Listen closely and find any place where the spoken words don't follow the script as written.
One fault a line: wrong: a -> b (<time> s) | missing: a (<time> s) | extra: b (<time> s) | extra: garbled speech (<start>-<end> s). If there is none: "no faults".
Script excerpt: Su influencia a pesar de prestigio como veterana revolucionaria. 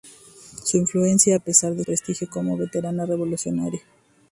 no faults